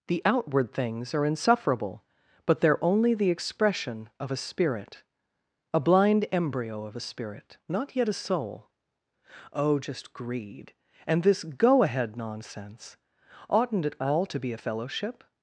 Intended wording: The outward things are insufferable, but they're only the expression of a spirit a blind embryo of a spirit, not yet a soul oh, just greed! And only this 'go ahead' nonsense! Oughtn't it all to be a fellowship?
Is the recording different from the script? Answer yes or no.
yes